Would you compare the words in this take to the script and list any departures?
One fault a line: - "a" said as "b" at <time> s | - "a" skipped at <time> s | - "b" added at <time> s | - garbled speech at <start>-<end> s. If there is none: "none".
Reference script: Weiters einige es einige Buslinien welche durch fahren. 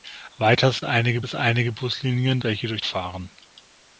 none